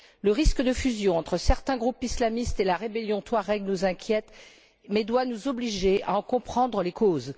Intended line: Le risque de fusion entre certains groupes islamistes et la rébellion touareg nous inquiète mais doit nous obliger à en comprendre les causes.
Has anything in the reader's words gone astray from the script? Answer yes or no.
no